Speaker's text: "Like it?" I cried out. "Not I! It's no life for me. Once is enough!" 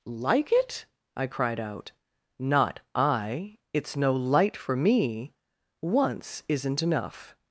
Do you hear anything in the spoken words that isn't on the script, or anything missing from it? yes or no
yes